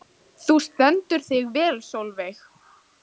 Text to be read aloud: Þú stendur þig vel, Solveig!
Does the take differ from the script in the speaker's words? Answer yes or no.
no